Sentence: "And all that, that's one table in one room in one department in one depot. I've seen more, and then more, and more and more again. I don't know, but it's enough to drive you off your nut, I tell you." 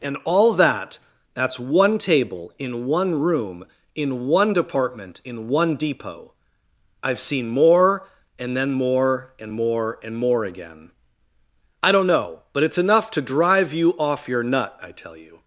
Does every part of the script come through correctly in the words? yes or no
yes